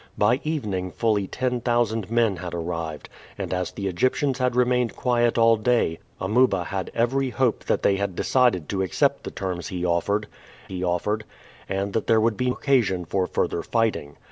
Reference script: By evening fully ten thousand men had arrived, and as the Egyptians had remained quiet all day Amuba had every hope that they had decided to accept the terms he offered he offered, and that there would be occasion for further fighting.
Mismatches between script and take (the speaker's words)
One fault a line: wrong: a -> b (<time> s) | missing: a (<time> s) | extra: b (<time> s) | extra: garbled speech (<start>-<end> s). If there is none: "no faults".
no faults